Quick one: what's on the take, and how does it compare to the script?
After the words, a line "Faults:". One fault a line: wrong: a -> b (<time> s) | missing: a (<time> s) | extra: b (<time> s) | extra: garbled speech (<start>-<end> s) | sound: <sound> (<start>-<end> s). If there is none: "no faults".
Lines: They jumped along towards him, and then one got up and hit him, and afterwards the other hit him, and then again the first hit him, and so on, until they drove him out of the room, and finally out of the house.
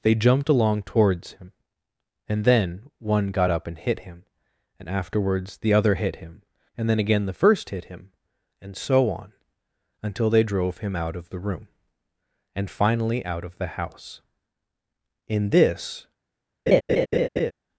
They jumped along towards him, and then one got up and hit him, and afterwards the other hit him, and then again the first hit him, and so on, until they drove him out of the room, and finally out of the house. In this
Faults:
extra: In this (15.3 s)
sound: laugh (16.7-17.5 s)